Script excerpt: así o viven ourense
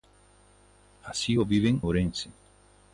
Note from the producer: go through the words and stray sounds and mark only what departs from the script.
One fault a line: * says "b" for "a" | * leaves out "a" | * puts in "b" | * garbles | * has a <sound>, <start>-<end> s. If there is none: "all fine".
all fine